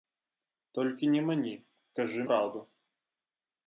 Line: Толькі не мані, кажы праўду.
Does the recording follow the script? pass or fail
pass